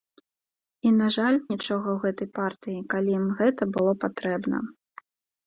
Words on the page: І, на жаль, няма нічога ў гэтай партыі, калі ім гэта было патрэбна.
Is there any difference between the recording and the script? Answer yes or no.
yes